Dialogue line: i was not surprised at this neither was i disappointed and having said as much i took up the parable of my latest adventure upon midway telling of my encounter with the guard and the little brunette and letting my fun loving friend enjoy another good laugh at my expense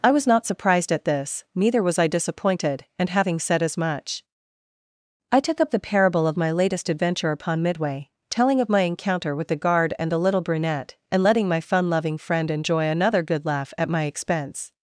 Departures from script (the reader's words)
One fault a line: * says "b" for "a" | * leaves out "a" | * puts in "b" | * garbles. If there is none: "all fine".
all fine